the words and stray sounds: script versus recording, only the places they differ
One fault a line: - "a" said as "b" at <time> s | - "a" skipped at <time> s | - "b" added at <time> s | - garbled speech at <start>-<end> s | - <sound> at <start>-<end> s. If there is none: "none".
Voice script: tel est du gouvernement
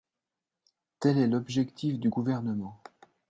- "l'objectif" added at 1.3 s